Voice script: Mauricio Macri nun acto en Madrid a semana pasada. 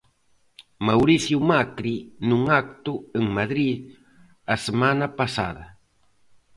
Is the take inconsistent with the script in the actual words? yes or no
no